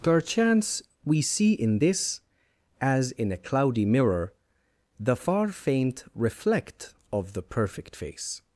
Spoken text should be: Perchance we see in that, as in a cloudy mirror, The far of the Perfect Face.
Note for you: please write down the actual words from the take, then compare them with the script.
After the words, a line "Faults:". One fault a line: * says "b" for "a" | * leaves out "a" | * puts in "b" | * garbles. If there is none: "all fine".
Perchance we see in this, as in a cloudy mirror, The far faint reflect of the Perfect Face.
Faults:
* says "this" for "that"
* puts in "faint reflect"